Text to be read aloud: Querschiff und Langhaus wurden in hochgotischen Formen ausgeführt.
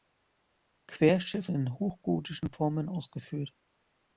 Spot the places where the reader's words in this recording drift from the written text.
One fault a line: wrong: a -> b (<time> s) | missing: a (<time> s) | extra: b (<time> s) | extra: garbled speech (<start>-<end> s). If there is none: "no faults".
missing: und Langhaus wurden (1.5 s)